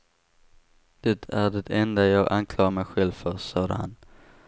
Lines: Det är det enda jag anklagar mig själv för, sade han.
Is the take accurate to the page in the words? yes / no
yes